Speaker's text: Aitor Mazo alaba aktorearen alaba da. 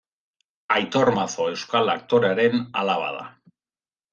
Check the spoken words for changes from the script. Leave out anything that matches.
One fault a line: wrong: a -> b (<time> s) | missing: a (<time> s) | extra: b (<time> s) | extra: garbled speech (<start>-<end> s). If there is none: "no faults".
wrong: alaba -> euskal (1.5 s)